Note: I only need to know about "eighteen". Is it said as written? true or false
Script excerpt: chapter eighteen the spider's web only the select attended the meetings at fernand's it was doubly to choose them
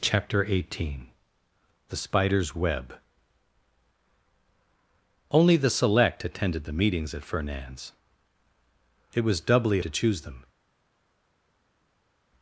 true